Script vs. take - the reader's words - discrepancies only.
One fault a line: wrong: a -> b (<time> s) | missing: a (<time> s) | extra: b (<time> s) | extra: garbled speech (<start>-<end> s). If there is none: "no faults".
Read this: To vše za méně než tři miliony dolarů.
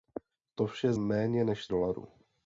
missing: za (0.9 s)
missing: tři miliony (1.7 s)